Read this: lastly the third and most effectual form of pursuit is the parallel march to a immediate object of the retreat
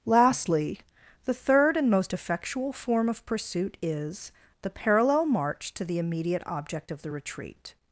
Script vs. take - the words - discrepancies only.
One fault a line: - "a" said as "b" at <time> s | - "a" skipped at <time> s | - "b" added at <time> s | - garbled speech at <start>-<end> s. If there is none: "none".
- "a" said as "the" at 5.8 s